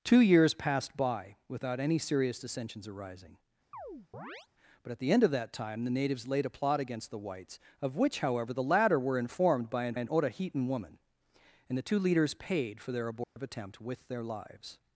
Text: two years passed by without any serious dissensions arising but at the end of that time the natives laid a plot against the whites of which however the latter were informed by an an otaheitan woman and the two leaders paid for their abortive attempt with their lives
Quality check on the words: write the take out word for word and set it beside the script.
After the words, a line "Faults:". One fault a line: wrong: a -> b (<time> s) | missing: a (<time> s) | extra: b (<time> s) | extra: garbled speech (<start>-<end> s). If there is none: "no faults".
two years passed by without any serious dissensions arising but at the end of that time the natives laid a plot against the whites of which however the latter were informed by an an otaheitan woman and the two leaders paid for their abortive attempt with their lives
Faults:
no faults